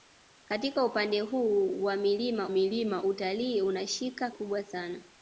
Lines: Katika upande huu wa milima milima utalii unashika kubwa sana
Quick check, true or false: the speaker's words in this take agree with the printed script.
true